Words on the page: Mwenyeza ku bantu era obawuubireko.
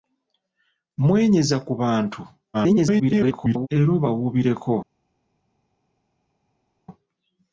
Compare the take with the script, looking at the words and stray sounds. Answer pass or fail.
fail